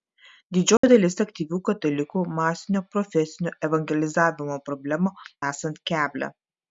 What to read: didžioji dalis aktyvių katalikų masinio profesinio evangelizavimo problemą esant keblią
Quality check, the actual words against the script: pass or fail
pass